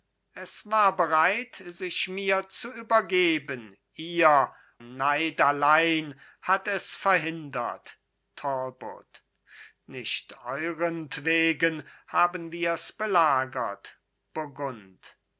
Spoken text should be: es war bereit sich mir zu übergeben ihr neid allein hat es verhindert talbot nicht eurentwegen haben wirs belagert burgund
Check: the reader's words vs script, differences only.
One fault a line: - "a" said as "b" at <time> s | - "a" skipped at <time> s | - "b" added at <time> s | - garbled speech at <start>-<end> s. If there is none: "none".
none